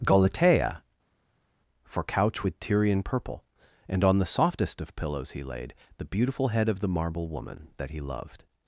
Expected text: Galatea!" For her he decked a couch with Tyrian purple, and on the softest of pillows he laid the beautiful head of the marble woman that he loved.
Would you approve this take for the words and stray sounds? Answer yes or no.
no